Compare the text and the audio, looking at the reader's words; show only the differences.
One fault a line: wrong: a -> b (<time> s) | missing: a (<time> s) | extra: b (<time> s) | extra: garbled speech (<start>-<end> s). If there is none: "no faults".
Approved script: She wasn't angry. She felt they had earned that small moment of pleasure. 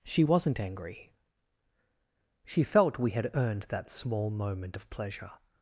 wrong: they -> we (3.0 s)